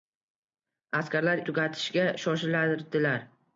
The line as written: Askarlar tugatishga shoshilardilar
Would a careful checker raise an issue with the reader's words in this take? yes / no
no